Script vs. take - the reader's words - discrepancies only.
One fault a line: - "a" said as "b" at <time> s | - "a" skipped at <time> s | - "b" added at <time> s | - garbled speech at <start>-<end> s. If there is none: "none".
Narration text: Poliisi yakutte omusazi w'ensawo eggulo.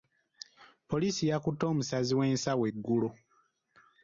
none